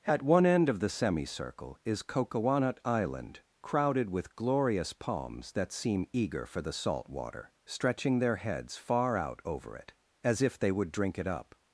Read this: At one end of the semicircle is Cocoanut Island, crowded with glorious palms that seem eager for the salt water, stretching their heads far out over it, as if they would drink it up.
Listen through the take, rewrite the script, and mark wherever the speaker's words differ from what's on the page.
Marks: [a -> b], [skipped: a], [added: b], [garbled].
At one end of the semicircle is Cocoanut Island, crowded with glorious palms that seem eager for the salt water, stretching their heads far out over it, as if they would drink it up.